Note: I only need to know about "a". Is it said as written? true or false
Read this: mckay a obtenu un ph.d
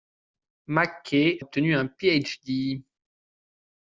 false